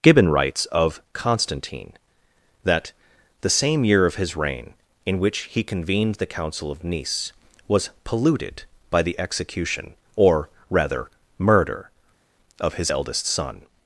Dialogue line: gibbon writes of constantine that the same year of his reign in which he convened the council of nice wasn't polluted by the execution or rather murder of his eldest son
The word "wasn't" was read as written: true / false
false